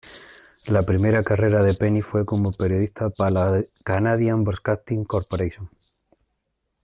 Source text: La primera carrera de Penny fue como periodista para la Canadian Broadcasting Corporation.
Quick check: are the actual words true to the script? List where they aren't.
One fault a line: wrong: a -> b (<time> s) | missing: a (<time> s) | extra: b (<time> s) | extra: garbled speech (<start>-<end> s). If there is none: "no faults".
no faults